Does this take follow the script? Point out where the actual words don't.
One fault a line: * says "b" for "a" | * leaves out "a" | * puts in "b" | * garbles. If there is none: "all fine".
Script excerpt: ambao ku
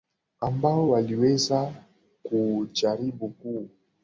* puts in "waliweza kujaribu"